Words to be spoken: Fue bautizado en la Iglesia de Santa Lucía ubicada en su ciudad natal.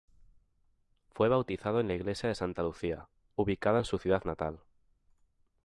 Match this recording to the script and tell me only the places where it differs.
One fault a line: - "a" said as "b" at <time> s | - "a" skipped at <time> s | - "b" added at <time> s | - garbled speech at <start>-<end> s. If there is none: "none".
none